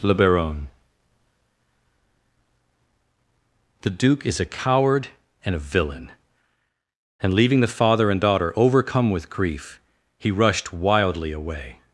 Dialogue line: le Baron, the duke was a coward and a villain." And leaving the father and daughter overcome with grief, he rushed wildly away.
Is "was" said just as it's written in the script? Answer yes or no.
no